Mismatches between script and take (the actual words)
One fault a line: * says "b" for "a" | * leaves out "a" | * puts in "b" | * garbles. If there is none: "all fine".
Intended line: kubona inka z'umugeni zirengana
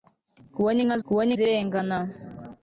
* says "kubona" for "z'umugeni"